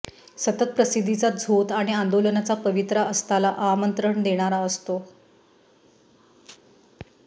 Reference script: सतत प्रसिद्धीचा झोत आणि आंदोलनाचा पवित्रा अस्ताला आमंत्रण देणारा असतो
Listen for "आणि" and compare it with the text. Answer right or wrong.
right